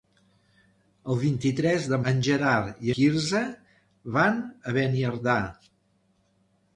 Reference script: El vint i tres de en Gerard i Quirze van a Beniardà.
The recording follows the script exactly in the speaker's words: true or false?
true